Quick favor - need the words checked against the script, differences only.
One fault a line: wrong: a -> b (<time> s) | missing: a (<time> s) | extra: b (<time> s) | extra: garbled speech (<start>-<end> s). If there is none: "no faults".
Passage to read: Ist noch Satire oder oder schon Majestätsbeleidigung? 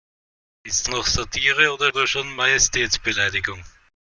no faults